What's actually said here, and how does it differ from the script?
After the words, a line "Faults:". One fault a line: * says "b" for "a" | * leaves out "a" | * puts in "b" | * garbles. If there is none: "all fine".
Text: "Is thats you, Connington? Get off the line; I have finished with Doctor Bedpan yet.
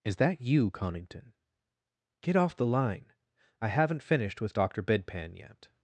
"Is that you, Connington? Get off the line; I haven't finished with Doctor Bedpan yet.
Faults:
* says "that" for "thats"
* says "haven't" for "have"